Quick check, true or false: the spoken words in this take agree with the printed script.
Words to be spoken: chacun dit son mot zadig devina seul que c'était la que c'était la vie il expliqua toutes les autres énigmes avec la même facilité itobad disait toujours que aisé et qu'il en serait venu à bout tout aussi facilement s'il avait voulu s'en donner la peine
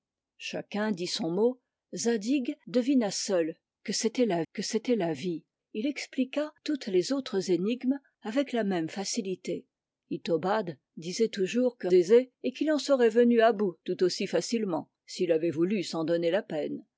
true